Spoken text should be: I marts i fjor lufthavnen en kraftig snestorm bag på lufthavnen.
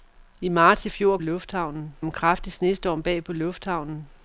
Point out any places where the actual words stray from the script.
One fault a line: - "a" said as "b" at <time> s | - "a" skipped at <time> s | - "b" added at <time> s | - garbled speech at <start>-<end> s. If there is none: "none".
none